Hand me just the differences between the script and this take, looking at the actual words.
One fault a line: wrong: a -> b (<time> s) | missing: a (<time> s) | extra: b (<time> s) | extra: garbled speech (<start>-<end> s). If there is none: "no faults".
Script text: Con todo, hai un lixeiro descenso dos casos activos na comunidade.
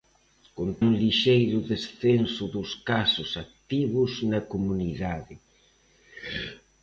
missing: todo hai (0.7 s)